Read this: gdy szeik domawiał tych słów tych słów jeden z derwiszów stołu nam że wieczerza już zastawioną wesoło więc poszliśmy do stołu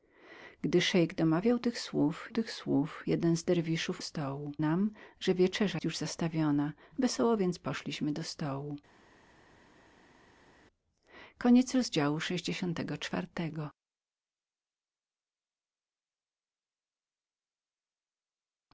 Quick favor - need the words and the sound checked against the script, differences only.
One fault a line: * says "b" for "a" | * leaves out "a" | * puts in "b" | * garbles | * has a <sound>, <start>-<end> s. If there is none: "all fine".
all fine